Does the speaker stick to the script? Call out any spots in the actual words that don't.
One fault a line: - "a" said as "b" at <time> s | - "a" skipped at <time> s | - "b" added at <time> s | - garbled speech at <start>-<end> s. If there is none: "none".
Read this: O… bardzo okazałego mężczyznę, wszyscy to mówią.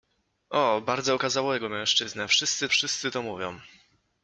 - "wszyscy" added at 2.7 s